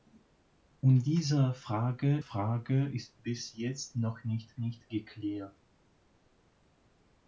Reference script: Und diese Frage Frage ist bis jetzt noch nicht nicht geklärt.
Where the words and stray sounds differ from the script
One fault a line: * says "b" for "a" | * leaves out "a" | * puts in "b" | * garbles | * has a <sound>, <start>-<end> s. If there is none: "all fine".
all fine